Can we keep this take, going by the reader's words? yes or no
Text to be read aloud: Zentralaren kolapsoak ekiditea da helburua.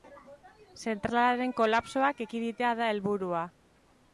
yes